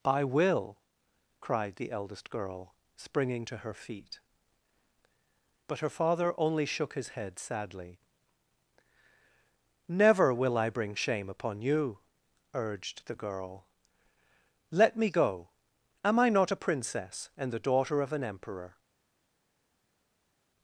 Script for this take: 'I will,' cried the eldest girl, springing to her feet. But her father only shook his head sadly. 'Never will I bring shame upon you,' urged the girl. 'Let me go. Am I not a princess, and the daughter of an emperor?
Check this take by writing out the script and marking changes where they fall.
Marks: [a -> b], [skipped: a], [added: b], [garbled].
'I will,' cried the eldest girl, springing to her feet. But her father only shook his head sadly. 'Never will I bring shame upon you,' urged the girl. 'Let me go. Am I not a princess, and the daughter of an emperor?